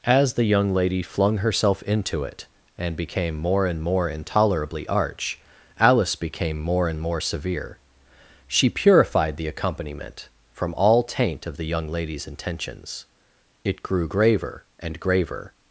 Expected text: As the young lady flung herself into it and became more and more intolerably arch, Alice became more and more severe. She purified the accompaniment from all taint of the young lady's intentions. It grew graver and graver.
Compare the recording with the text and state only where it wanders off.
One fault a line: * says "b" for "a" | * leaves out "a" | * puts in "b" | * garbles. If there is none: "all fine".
all fine